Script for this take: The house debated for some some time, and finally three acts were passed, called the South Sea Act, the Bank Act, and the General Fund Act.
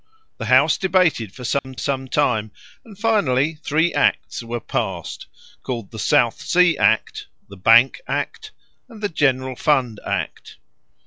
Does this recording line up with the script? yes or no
yes